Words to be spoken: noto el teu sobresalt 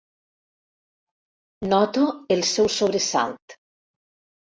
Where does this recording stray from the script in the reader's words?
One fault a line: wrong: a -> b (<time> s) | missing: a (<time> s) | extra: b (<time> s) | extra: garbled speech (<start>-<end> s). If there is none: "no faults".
wrong: teu -> seu (2.5 s)